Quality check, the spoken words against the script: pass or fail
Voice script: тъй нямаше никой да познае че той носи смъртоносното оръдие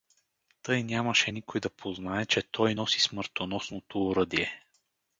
pass